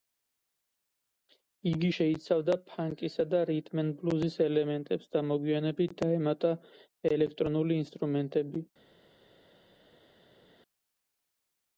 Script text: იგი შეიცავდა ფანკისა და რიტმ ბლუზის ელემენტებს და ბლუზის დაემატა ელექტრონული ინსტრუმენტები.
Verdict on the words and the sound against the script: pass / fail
fail